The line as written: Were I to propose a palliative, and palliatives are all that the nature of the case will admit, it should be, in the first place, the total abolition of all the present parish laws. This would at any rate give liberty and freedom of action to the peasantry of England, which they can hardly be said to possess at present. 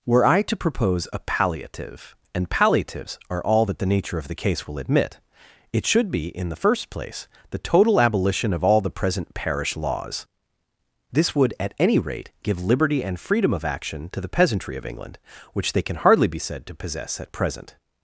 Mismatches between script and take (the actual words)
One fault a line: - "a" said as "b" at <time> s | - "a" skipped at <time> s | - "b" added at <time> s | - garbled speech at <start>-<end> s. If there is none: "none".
none